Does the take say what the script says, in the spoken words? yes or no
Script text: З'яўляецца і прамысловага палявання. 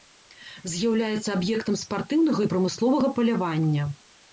no